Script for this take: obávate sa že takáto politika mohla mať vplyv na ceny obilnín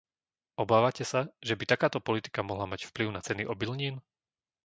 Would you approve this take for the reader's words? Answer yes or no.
no